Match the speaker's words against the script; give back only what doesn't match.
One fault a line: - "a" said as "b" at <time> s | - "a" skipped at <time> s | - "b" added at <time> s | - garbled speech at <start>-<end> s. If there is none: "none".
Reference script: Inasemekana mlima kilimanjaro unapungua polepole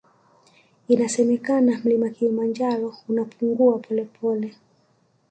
none